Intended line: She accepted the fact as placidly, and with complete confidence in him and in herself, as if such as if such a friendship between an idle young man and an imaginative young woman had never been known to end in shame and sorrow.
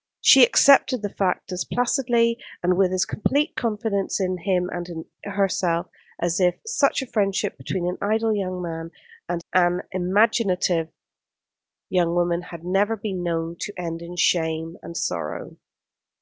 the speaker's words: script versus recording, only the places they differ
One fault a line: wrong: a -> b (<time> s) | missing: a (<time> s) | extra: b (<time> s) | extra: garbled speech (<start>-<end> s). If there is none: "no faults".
extra: as (2.9 s)
missing: as if such (7.0 s)